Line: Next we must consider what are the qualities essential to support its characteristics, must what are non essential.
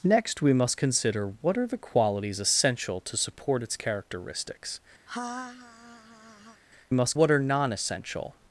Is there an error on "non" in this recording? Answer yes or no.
no